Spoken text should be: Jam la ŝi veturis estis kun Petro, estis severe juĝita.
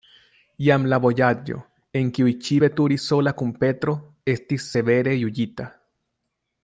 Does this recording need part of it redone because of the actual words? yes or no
yes